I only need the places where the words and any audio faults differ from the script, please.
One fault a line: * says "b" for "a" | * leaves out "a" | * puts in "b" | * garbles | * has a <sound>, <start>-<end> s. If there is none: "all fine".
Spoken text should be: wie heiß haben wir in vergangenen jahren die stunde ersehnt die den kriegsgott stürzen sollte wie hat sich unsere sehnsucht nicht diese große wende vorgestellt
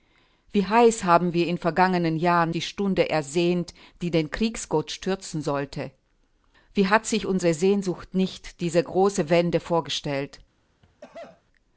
* has a cough, 10.8-11.4 s